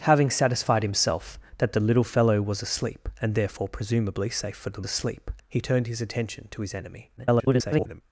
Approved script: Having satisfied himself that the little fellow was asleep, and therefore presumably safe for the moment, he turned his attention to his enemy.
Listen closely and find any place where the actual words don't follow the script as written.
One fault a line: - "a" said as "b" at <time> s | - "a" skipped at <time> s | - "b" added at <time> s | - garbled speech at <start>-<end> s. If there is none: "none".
- "moment" said as "asleep" at 4.9 s
- garbled speech at 7.2-8.0 s